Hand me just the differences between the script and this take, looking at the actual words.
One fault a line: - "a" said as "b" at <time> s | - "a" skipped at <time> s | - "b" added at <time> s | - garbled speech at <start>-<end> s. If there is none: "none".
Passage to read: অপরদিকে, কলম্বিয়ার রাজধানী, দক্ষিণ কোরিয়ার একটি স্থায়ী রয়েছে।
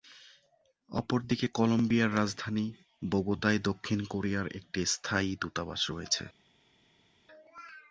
- "বোগোতায়" added at 3.0 s
- "দূতাবাস" added at 5.4 s